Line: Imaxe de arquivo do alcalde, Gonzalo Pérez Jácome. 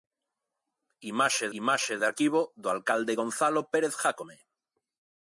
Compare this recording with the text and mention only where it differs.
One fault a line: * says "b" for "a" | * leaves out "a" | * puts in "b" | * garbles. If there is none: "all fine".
* puts in "imaxe"